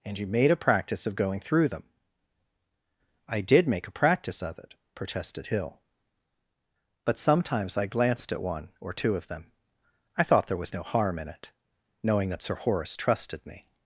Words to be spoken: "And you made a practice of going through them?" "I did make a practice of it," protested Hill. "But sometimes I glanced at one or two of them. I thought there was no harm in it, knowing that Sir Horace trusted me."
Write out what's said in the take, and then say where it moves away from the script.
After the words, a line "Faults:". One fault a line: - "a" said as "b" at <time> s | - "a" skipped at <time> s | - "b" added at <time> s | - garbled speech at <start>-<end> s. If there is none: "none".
"And you made a practice of going through them?" "I did make a practice of it," protested Hill. "But sometimes I glanced at one or two of them. I thought there was no harm in it, knowing that Sir Horace trusted me."
Faults:
none